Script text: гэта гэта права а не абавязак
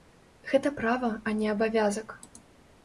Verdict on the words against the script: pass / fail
fail